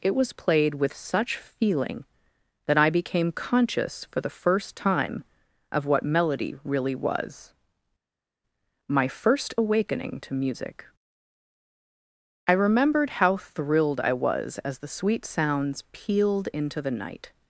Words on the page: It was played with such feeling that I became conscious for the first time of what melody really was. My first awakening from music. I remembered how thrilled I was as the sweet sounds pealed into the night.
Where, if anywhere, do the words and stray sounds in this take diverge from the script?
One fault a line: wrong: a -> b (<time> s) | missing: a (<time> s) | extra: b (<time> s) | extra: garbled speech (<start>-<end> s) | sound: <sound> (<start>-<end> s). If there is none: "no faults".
wrong: from -> to (10.2 s)